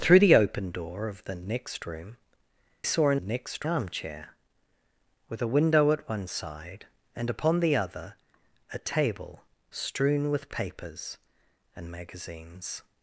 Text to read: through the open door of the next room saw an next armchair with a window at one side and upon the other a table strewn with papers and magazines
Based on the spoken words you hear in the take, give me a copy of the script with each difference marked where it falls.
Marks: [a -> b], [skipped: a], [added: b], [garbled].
through the open door of the next room saw an next armchair with a window at one side and upon the other a table strewn with papers and magazines